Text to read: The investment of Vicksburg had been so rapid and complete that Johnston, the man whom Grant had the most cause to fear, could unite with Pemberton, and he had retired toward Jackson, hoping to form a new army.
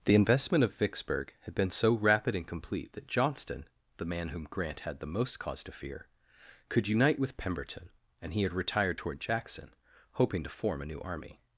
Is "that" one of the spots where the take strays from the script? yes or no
no